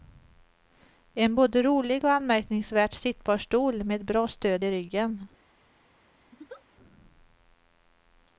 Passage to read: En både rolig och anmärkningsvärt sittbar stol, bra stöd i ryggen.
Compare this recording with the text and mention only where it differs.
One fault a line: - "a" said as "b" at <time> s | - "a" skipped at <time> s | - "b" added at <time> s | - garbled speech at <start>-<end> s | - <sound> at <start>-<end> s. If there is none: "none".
- "med" added at 3.8 s
- laugh at 6.3-6.6 s